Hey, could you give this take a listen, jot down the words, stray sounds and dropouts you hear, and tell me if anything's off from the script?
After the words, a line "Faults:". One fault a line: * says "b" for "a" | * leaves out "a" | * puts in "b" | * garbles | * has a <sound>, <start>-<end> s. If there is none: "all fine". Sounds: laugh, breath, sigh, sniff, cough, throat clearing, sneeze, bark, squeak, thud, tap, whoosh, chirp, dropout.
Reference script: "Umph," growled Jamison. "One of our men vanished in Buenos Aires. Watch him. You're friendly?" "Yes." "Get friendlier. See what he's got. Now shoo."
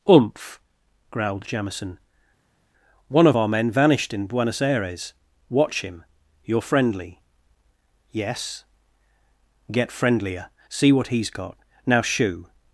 "Umph," growled Jamison. "One of our men vanished in Buenos Aires. Watch him. You're friendly?" "Yes." "Get friendlier. See what he's got. Now shoo."
Faults:
all fine